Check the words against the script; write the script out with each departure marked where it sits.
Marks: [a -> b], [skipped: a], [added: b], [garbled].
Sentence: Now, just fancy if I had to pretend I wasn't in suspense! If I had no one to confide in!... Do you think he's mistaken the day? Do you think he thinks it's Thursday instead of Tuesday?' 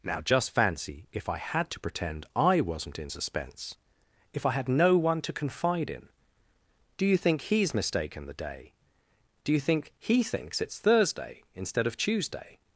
Now, just fancy if I had to pretend I wasn't in suspense! If I had no one to confide in!... Do you think he's mistaken the day? Do you think he thinks it's Thursday instead of Tuesday?'